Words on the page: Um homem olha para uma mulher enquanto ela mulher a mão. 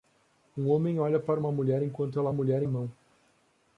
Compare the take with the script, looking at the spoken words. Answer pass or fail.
pass